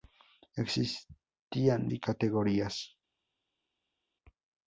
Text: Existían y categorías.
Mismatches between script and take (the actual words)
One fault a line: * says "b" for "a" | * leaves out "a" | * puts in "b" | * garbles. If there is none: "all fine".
all fine